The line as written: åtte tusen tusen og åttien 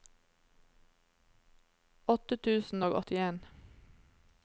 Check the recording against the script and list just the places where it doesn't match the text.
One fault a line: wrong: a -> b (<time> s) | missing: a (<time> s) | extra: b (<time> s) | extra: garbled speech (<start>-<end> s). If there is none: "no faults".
missing: tusen (2.8 s)